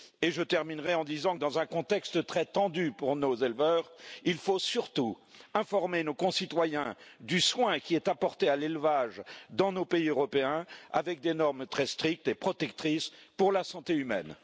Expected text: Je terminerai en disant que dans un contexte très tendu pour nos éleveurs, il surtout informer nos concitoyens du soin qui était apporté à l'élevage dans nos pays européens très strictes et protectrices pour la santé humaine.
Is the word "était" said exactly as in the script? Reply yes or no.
no